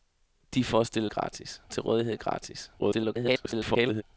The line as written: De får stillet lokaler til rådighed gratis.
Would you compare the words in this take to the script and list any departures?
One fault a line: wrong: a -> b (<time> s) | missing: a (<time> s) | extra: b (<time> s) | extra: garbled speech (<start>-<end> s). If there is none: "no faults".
wrong: lokaler -> gratis (1.1 s)
extra: garbled speech (2.8-4.0 s)